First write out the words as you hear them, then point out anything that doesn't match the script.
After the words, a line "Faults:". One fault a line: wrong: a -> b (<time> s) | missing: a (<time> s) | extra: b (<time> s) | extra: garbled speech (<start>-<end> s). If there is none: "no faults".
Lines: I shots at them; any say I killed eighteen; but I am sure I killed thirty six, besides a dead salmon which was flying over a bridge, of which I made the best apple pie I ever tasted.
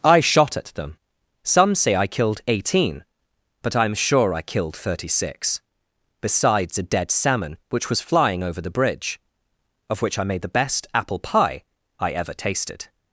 I shot at them; some say I killed eighteen; but I am sure I killed thirty six, besides a dead salmon which was flying over the bridge, of which I made the best apple pie I ever tasted.
Faults:
wrong: shots -> shot (0.2 s)
wrong: any -> some (1.4 s)
wrong: a -> the (8.6 s)